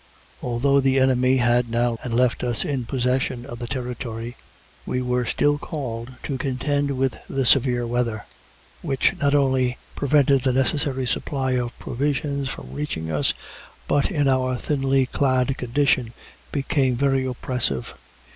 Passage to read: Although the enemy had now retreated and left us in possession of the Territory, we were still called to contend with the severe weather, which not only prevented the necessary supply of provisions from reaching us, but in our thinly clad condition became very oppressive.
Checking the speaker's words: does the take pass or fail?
fail